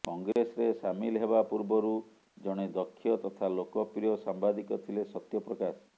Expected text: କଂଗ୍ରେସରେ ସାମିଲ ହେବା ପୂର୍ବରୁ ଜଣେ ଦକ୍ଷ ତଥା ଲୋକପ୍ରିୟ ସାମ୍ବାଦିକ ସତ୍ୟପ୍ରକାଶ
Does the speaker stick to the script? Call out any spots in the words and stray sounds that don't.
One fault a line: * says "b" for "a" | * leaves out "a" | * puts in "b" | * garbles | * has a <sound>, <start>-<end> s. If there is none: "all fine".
* has a dropout, 0.3-0.4 s
* puts in "ଥିଲେ"